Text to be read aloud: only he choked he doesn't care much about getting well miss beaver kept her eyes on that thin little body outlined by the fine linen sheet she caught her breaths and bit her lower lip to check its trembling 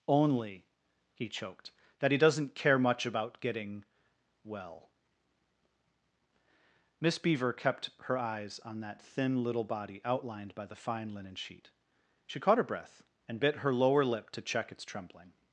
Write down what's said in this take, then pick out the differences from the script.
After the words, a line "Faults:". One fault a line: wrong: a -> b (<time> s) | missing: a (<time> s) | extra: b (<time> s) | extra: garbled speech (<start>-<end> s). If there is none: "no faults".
only he choked that he doesn't care much about getting well miss beaver kept her eyes on that thin little body outlined by the fine linen sheet she caught her breath and bit her lower lip to check its trembling
Faults:
extra: that (2.0 s)
wrong: breaths -> breath (12.6 s)